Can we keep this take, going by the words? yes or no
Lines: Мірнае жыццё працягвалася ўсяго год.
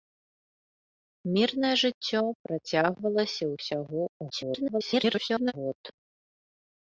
no